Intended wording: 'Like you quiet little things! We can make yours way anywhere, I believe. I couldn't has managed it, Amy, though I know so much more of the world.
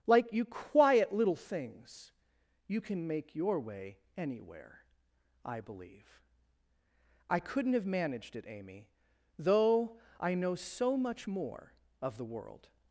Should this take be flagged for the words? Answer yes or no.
yes